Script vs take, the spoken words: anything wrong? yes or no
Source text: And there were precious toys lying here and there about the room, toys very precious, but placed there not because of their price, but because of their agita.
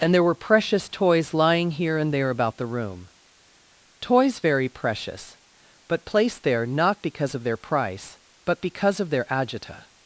no